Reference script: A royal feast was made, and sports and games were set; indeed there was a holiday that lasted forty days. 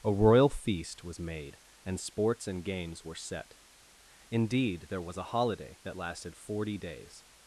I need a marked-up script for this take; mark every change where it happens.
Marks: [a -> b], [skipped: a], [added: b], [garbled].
A royal feast was made, and sports and games were set; indeed there was a holiday that lasted forty days.